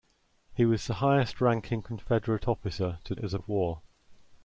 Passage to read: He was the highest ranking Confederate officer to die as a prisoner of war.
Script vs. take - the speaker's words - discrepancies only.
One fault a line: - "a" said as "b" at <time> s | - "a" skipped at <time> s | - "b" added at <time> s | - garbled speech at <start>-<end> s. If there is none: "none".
- "die" skipped at 3.1 s
- "prisoner" skipped at 3.4 s